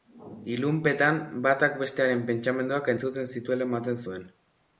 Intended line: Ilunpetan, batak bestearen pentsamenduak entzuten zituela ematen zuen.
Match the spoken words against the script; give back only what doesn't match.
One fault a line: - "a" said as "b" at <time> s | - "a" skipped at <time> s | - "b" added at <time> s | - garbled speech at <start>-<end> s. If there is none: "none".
none